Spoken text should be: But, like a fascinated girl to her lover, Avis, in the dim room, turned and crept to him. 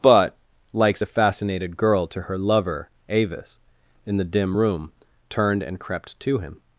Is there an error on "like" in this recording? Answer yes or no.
yes